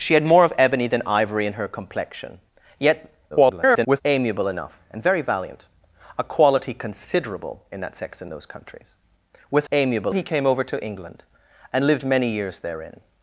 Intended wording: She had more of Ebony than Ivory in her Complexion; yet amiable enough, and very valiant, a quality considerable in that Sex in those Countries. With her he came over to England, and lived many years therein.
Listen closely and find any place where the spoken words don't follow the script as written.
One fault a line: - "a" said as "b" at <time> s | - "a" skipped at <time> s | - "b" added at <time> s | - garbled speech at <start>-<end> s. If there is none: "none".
- garbled speech at 3.3-4.0 s
- "her" said as "amiable" at 9.7 s